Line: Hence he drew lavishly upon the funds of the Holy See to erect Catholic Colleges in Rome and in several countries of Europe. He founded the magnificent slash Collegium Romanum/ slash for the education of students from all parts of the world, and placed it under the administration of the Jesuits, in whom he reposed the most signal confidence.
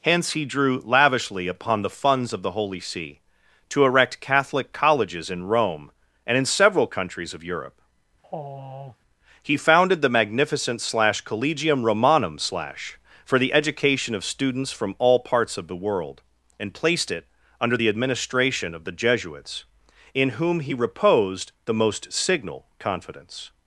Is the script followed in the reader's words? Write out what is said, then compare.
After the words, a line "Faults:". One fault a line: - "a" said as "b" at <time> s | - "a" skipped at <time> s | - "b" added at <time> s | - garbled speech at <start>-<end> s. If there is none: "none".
Hence he drew lavishly upon the funds of the Holy See to erect Catholic Colleges in Rome and in several countries of Europe. He founded the magnificent slash Collegium Romanum/ slash for the education of students from all parts of the world, and placed it under the administration of the Jesuits, in whom he reposed the most signal confidence.
Faults:
none